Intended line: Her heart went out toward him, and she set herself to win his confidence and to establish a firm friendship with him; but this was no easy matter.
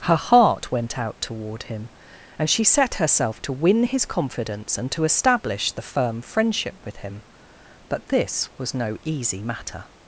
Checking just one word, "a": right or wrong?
wrong